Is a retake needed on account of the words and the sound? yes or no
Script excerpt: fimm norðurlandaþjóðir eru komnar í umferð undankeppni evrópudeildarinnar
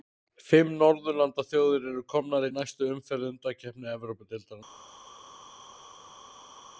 yes